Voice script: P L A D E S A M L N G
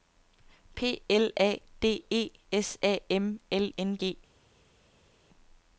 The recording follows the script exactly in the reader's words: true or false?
true